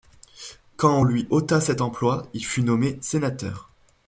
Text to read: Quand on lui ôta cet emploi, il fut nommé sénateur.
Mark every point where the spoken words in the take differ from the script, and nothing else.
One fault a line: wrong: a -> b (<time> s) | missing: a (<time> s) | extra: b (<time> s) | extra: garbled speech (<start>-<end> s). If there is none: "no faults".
no faults